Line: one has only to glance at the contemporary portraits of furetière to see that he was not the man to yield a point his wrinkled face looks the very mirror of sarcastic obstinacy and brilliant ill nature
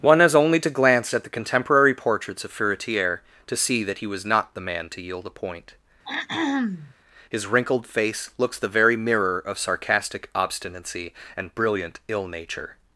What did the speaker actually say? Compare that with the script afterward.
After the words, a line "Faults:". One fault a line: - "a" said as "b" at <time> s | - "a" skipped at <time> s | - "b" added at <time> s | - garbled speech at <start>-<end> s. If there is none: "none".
one has only to glance at the contemporary portraits of furetière to see that he was not the man to yield a point his wrinkled face looks the very mirror of sarcastic obstinacy and brilliant ill nature
Faults:
none